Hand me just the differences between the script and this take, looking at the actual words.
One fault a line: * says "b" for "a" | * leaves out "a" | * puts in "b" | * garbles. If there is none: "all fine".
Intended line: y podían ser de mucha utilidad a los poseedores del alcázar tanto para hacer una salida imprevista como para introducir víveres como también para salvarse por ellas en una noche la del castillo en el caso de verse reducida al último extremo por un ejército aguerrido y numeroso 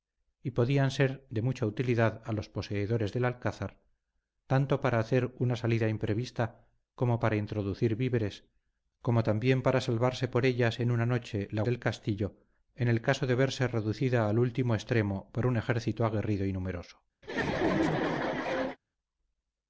all fine